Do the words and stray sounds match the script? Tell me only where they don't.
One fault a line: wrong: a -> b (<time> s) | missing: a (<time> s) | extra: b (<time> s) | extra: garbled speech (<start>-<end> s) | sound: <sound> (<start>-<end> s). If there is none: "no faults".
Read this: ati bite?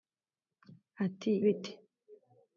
no faults